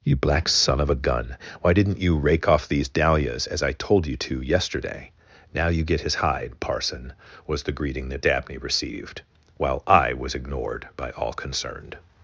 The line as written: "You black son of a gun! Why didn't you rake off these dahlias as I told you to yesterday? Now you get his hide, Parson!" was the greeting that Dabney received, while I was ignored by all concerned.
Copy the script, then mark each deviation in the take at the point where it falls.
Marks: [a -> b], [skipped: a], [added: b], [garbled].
"You black son of a gun! Why didn't you rake off these dahlias as I told you to yesterday? Now you get his hide, Parson!" was the greeting that Dabney received, while I was ignored by all concerned.